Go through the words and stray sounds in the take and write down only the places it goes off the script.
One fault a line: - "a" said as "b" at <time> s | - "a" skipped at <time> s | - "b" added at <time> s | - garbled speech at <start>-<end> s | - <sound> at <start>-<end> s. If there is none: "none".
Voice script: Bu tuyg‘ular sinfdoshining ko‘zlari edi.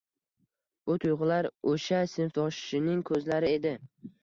- "o‘sha" added at 1.7 s